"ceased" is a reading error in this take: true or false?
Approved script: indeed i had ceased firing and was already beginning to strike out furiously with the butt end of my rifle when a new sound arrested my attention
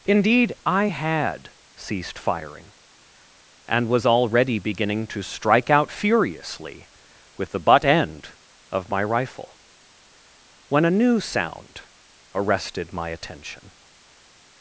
false